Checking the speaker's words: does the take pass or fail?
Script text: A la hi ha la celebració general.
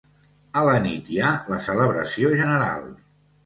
fail